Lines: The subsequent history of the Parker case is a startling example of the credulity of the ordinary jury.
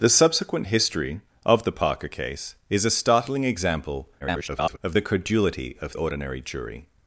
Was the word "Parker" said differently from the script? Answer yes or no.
no